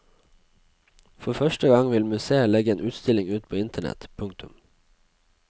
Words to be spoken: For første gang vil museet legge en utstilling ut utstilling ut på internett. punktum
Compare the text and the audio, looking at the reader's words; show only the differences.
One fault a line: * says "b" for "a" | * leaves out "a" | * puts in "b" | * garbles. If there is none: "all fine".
* leaves out "utstilling ut"